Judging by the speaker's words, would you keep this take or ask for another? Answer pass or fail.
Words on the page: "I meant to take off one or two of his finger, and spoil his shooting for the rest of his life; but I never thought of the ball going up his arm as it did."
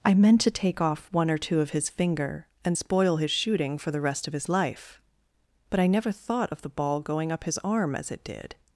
pass